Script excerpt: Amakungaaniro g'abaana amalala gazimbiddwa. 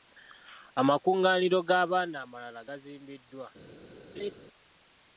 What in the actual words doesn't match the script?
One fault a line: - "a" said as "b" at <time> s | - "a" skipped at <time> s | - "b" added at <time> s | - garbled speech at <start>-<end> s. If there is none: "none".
none